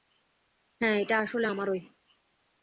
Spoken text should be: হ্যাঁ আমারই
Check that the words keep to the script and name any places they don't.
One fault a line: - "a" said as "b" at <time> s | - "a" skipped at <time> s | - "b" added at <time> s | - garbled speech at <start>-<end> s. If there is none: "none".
- "এটা আসলে" added at 1.0 s